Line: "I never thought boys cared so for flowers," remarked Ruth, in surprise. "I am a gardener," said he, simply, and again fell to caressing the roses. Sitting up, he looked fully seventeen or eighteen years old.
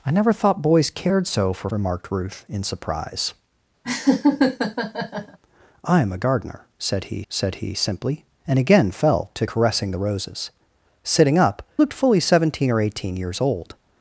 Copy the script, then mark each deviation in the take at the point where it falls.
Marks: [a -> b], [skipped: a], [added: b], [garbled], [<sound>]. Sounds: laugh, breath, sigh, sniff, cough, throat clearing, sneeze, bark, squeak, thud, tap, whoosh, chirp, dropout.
"I never thought boys cared so for [skipped: flowers,"] remarked Ruth, in surprise. [laugh] "I am a gardener," said he, [added: said he] simply, and again fell to caressing the roses. Sitting up, [skipped: he] looked fully seventeen or eighteen years old.